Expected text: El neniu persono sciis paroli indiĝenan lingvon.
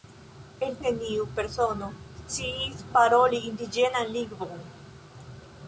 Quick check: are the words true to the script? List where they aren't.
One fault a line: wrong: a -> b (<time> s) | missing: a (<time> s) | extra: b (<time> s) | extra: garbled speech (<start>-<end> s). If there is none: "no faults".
no faults